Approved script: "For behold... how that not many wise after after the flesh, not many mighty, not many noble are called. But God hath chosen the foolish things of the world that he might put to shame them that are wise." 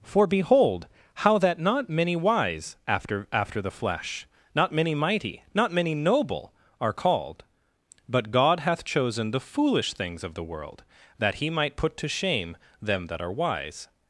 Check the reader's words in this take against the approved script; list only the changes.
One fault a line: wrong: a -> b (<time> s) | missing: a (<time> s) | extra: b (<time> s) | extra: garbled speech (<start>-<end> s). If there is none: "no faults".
no faults